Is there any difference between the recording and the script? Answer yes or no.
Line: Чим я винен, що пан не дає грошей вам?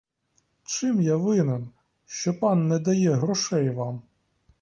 no